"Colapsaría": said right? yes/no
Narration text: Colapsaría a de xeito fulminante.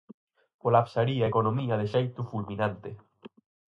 yes